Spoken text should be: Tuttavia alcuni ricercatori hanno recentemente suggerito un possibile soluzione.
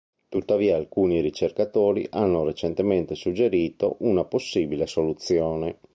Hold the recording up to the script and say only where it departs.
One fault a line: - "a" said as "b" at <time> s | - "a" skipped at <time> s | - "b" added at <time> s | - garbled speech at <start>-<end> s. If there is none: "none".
- "un" said as "una" at 4.0 s